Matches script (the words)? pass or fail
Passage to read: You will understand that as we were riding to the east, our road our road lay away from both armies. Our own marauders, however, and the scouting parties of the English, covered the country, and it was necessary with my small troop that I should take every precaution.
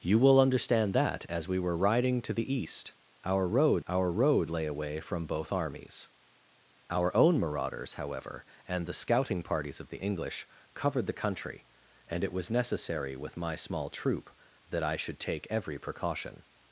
pass